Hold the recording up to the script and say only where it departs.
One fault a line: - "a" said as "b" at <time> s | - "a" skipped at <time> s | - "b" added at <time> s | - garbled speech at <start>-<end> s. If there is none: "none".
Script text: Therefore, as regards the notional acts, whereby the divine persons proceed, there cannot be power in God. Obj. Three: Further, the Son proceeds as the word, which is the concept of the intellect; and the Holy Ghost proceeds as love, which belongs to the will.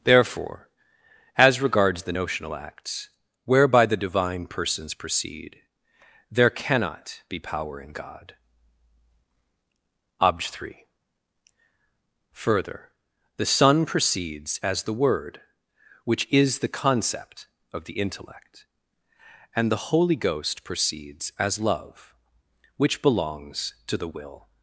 none